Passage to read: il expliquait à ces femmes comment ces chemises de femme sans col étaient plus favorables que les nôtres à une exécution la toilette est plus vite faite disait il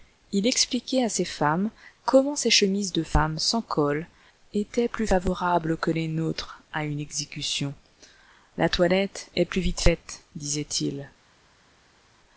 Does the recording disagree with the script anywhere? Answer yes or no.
no